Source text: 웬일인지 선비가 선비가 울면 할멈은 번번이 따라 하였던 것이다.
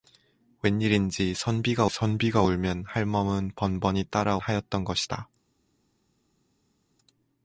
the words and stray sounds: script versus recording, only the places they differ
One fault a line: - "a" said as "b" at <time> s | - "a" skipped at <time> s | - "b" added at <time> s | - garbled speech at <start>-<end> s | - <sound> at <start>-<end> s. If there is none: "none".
none